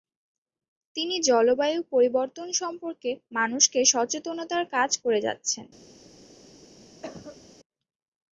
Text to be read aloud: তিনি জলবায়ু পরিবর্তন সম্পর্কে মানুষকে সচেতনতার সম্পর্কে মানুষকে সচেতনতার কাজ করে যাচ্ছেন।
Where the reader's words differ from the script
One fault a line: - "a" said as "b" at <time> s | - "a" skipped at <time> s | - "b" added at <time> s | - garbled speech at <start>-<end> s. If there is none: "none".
- "সম্পর্কে মানুষকে সচেতনতার" skipped at 4.6 s